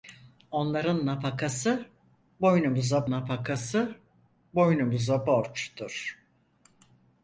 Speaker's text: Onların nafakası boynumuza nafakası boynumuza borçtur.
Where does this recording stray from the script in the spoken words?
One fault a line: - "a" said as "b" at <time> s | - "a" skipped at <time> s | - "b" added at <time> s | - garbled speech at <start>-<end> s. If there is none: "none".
none